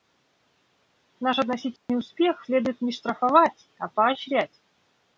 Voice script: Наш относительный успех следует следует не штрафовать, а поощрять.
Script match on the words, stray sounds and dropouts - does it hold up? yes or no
no